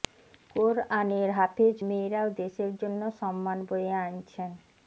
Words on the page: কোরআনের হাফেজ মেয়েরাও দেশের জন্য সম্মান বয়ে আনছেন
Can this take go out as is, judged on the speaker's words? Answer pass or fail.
pass